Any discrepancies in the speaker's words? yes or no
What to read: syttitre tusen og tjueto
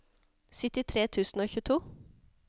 no